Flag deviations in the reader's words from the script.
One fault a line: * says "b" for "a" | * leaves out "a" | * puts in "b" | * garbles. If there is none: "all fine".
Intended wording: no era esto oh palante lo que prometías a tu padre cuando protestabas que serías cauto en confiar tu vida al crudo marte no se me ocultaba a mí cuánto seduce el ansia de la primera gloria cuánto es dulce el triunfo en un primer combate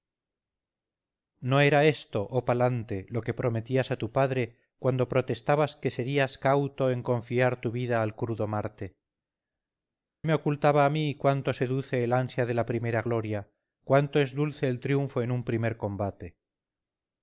* leaves out "no se"